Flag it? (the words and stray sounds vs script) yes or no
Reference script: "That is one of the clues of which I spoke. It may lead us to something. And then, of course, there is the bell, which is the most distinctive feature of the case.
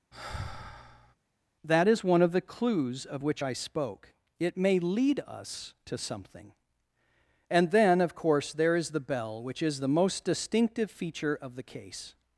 yes